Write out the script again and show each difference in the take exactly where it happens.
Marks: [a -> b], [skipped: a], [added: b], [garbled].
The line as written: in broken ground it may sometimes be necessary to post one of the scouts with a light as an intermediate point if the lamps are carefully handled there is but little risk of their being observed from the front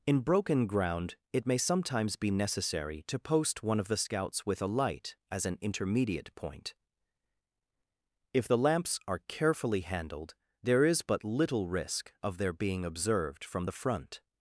in broken ground it may sometimes be necessary to post one of the scouts with a light as an intermediate point if the lamps are carefully handled there is but little risk of their being observed from the front